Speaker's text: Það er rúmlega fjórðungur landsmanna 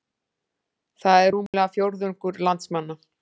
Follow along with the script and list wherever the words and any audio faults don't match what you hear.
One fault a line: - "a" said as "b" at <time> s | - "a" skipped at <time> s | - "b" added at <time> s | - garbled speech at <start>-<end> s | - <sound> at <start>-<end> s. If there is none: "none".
- dropout at 1.5-1.5 s